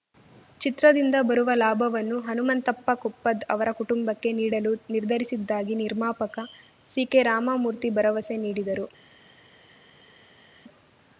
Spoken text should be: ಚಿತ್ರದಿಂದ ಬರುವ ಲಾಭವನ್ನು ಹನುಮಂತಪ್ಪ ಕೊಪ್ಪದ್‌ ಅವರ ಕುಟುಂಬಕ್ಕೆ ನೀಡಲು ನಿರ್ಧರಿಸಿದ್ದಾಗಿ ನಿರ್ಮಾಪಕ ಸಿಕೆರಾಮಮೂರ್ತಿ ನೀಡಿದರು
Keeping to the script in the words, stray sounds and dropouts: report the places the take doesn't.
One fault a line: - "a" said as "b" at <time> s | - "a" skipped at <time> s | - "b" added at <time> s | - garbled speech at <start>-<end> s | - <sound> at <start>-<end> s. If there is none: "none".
- "ಭರವಸೆ" added at 8.0 s